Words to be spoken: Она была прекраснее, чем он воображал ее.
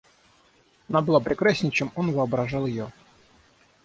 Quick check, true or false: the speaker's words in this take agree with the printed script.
true